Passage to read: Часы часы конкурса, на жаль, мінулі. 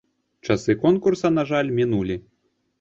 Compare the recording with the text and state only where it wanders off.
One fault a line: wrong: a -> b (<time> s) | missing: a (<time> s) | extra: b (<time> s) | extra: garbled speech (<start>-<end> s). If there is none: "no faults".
missing: часы (0.8 s)